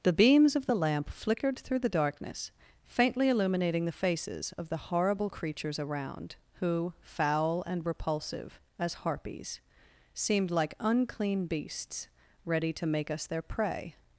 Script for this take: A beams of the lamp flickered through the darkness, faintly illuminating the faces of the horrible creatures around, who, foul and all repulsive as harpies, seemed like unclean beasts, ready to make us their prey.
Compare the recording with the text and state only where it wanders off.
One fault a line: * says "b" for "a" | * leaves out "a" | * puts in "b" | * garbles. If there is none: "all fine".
* says "The" for "A"
* leaves out "all"